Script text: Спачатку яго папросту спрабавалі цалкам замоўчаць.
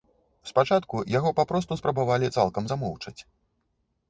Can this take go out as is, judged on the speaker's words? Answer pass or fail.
pass